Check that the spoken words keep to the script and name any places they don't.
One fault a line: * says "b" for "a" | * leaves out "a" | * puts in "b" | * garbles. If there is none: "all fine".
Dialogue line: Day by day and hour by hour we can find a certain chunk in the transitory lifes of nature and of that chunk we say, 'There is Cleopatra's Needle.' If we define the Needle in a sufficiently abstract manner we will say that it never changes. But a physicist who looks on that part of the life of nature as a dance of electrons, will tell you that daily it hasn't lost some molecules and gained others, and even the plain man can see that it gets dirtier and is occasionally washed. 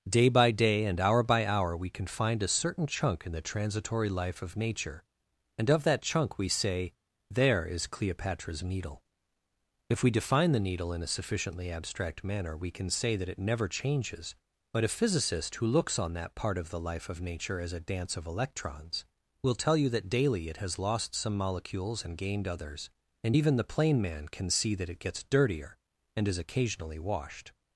* says "life" for "lifes"
* says "can" for "will"
* says "has" for "hasn't"